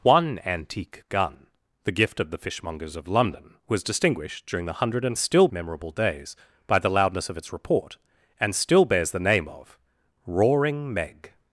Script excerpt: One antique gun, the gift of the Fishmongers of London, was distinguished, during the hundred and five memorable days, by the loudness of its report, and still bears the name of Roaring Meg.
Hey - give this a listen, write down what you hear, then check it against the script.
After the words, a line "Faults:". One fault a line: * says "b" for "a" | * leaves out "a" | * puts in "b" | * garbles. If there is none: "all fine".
One antique gun, the gift of the Fishmongers of London, was distinguished, during the hundred and still memorable days, by the loudness of its report, and still bears the name of Roaring Meg.
Faults:
* says "still" for "five"